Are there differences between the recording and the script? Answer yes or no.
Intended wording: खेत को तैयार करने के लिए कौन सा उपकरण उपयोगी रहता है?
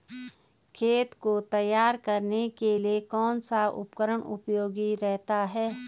no